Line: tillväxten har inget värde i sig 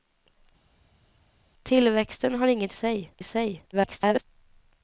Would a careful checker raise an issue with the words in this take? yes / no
yes